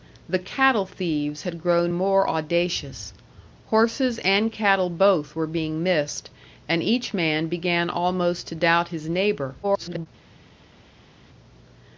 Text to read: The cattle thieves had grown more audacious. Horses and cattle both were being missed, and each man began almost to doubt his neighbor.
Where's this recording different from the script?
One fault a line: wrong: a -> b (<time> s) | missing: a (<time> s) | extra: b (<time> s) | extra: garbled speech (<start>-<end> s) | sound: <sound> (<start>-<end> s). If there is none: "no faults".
extra: garbled speech (9.6-10.1 s)